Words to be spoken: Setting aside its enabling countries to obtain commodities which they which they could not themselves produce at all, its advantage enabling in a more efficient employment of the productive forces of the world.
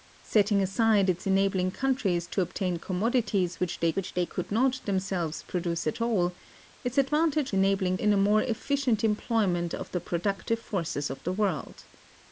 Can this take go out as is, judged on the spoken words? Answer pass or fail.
pass